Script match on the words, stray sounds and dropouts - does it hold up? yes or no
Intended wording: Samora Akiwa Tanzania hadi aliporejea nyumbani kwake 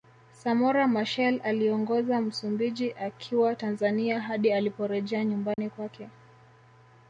no